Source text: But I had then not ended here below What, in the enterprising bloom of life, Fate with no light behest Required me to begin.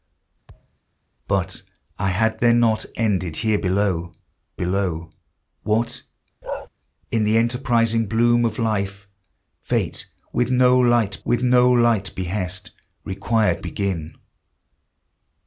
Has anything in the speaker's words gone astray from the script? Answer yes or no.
yes